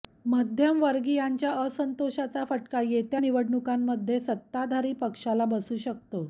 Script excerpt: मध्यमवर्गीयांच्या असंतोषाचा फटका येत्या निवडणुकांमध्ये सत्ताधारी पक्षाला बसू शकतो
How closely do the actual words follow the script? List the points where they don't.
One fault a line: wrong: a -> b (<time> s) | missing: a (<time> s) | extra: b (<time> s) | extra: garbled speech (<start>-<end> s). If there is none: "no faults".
no faults